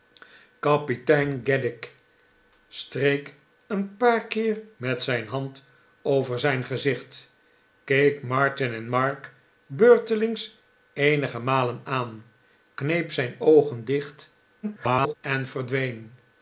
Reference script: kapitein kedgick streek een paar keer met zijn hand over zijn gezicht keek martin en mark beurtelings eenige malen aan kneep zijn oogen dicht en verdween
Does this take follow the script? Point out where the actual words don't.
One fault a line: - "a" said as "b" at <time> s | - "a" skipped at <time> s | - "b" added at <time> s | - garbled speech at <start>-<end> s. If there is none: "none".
- garbled speech at 14.6-15.1 s